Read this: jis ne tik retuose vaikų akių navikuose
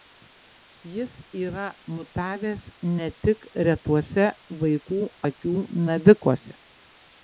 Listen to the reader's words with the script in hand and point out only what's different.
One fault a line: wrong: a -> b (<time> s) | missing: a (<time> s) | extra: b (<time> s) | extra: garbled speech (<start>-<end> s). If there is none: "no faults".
extra: yra mutavęs (1.4 s)